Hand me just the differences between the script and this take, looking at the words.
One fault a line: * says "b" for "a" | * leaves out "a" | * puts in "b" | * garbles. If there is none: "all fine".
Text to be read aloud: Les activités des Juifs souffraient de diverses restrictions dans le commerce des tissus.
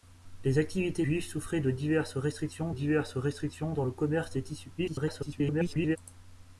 * leaves out "des"
* puts in "diverses restrictions"
* garbles